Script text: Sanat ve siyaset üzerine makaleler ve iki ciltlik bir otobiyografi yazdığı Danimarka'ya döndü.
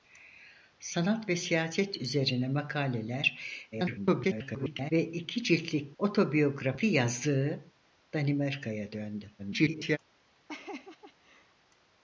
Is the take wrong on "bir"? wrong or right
wrong